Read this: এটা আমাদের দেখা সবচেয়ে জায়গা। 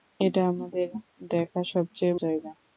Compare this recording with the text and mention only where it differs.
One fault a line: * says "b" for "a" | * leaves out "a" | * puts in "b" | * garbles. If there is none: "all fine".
all fine